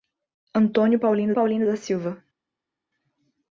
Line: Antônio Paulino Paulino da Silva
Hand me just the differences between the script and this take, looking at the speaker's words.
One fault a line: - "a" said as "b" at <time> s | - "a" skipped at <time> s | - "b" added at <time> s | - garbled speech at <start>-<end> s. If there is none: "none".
none